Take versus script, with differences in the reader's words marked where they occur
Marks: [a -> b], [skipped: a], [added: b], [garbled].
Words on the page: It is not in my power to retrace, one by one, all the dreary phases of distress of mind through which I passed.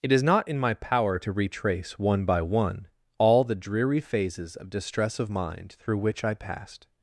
It is not in my power to retrace, one by one, all the dreary phases of distress of mind through which I passed.